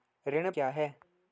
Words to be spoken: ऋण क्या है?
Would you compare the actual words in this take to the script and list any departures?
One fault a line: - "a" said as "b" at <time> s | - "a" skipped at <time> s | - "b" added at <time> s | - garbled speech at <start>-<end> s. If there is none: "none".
none